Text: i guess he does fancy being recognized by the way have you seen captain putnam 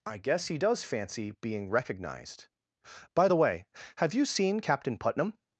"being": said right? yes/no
yes